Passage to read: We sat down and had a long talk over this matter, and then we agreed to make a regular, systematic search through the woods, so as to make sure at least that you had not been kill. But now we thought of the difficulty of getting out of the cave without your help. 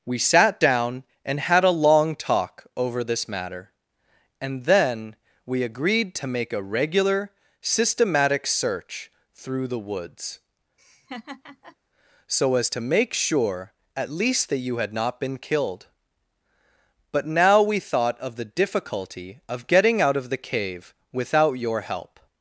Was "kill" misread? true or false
true